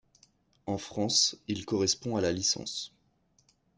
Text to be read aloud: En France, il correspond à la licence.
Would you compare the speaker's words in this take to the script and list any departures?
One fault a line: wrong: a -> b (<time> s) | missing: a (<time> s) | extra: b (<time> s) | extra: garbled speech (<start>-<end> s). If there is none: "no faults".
no faults